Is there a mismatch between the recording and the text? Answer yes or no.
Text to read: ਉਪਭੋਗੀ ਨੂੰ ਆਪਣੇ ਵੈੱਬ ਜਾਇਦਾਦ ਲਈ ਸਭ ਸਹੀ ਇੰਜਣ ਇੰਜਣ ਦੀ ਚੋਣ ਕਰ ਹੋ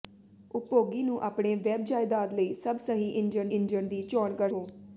no